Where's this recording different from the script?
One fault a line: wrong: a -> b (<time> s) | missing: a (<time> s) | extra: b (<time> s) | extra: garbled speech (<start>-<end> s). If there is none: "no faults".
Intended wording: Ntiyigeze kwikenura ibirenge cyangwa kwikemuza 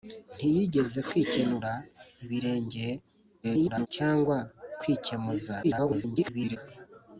extra: garbled speech (3.4-3.9 s)
extra: garbled speech (5.6-6.6 s)